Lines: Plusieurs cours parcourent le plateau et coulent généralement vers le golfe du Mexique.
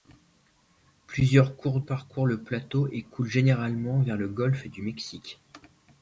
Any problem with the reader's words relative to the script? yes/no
no